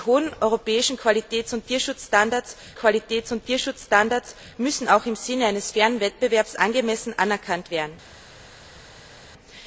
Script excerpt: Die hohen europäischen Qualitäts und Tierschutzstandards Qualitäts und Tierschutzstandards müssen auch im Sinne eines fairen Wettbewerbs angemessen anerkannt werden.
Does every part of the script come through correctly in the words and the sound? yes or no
yes